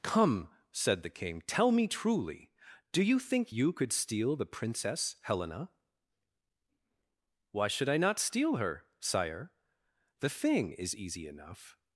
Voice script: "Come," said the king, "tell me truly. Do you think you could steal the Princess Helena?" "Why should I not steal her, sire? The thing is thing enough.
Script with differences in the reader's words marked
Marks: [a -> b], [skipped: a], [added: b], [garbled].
"Come," said the king, "tell me truly. Do you think you could steal the Princess Helena?" "Why should I not steal her, sire? The thing is [thing -> easy] enough.